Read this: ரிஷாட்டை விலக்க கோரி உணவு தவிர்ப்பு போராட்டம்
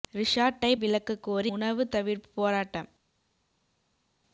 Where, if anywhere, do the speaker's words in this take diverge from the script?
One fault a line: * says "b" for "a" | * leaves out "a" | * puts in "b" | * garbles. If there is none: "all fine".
all fine